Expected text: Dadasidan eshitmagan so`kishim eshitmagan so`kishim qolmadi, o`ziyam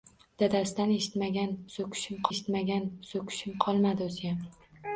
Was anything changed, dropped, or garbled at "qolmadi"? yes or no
no